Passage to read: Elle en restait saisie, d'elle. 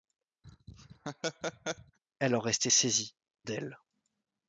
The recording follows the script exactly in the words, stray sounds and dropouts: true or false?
false